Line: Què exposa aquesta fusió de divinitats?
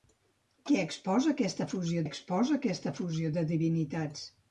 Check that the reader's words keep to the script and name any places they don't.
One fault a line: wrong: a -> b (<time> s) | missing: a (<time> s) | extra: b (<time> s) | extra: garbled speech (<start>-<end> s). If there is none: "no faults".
extra: exposa aquesta fusió (2.1 s)